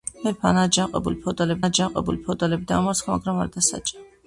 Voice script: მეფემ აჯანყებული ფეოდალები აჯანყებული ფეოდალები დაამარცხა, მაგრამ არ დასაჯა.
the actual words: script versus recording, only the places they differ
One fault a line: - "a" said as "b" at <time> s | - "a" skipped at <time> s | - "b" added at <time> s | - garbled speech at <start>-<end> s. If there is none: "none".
none